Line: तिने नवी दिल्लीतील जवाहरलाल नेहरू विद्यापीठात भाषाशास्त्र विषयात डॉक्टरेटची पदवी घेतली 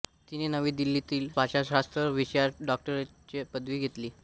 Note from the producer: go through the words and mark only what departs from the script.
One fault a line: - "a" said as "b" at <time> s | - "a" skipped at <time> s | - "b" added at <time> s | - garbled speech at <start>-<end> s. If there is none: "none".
- "जवाहरलाल नेहरू विद्यापीठात" skipped at 1.3 s